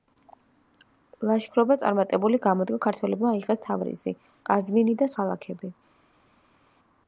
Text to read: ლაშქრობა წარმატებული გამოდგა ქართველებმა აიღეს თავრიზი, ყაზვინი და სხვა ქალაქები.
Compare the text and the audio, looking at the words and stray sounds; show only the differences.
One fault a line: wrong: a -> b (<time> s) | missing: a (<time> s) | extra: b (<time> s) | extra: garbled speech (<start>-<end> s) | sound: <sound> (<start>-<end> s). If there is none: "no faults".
missing: სხვა (5.1 s)